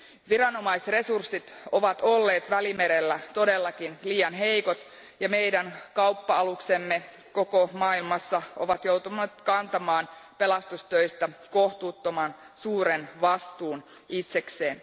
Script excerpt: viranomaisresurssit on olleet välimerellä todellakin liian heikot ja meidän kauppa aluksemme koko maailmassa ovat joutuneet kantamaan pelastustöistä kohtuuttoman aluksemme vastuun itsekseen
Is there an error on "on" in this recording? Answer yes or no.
yes